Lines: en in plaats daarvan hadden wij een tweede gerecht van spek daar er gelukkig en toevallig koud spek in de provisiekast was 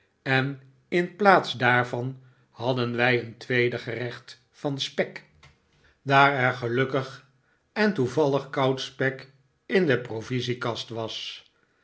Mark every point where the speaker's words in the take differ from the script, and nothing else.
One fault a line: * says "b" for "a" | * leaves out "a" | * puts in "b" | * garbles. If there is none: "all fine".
all fine